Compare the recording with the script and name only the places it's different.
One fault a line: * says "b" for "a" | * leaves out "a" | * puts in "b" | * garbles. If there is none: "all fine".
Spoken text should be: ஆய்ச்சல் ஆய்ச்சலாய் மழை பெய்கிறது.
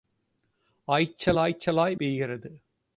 * leaves out "மழை"